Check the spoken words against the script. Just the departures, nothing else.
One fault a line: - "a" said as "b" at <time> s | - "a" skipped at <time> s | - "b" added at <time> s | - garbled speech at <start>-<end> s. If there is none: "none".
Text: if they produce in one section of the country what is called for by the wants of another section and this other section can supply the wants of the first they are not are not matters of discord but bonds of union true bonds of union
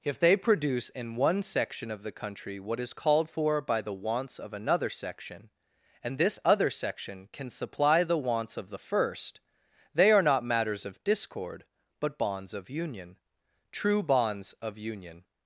- "are not" skipped at 10.4 s